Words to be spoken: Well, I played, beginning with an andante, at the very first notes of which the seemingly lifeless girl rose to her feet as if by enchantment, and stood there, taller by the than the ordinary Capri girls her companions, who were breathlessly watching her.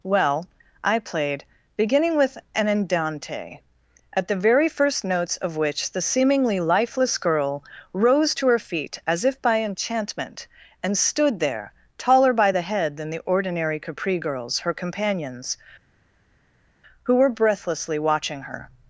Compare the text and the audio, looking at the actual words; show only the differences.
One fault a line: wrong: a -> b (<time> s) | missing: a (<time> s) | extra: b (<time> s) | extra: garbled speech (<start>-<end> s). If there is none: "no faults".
extra: head (12.6 s)